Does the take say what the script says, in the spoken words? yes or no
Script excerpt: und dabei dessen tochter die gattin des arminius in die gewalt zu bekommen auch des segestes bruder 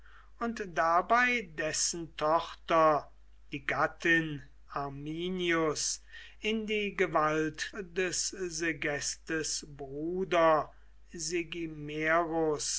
no